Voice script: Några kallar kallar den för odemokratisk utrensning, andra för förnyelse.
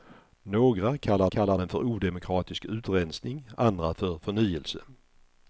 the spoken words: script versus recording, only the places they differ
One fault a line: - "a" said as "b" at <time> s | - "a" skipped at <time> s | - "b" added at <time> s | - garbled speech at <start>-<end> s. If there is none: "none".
none